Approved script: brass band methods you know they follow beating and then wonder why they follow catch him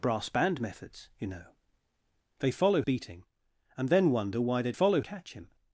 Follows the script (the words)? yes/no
yes